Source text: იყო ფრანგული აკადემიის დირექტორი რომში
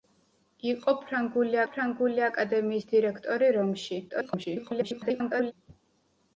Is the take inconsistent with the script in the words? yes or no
yes